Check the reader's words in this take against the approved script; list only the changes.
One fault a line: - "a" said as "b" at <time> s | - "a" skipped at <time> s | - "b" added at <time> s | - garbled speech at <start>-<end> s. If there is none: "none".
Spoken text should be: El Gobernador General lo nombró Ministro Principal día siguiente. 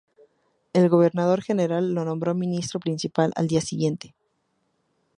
- "al" added at 3.3 s